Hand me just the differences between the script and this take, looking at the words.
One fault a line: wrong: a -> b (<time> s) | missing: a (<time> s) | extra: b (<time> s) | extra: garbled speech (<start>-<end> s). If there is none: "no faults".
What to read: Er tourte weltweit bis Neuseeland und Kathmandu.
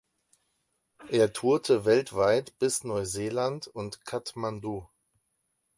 no faults